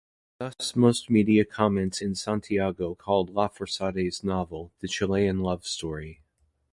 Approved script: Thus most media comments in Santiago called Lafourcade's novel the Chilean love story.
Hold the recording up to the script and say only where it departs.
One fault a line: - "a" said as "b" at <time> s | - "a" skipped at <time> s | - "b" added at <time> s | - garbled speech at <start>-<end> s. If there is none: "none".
none